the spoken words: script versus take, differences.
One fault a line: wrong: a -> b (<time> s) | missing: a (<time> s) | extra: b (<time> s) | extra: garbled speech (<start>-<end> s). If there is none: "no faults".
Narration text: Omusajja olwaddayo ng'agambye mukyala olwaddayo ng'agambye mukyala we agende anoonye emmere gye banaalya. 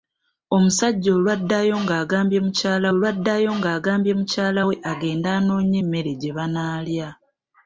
no faults